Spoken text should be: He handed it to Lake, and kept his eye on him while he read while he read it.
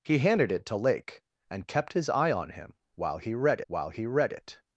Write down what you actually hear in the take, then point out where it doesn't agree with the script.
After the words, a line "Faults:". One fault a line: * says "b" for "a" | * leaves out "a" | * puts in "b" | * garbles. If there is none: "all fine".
He handed it to Lake, and kept his eye on him while he read while he read it.
Faults:
all fine